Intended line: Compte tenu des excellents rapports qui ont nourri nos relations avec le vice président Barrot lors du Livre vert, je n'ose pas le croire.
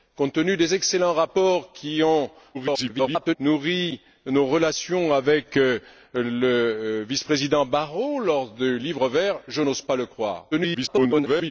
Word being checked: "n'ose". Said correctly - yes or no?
yes